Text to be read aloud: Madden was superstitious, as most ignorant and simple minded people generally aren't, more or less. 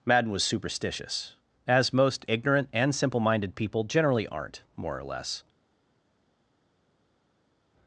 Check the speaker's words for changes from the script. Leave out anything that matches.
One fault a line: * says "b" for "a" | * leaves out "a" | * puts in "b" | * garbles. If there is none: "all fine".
all fine